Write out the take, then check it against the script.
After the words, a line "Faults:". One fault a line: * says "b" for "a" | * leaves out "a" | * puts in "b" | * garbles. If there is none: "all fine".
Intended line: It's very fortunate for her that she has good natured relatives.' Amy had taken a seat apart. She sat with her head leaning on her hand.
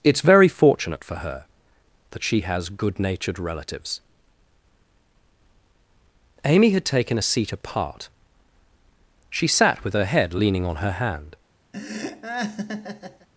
It's very fortunate for her that she has good natured relatives.' Amy had taken a seat apart. She sat with her head leaning on her hand.
Faults:
all fine